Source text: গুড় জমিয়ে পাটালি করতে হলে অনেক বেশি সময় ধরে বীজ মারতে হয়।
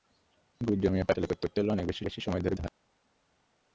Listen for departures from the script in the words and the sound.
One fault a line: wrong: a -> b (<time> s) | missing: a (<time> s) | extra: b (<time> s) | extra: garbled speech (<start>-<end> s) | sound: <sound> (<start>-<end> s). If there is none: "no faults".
extra: করতে (1.4 s)
extra: বেশি (2.0 s)
missing: বীজ মারতে (2.6 s)